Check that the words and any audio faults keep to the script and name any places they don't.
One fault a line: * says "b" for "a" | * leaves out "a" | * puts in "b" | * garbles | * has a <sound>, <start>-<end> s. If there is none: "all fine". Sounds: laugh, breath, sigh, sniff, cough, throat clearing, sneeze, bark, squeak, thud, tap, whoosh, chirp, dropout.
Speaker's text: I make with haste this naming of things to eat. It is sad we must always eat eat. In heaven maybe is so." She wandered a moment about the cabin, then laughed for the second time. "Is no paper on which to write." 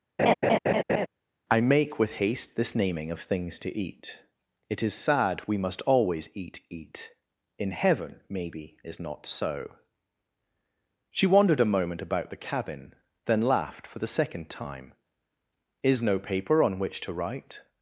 * has a laugh, 0.2-1.1 s
* puts in "not"